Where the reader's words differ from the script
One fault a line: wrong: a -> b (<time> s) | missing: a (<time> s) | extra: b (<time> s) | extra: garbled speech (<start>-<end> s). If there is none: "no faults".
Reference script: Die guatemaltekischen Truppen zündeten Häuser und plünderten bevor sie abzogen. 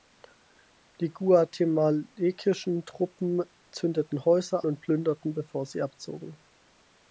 no faults